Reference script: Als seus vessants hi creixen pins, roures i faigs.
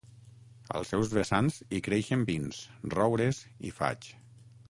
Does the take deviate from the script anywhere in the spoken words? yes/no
no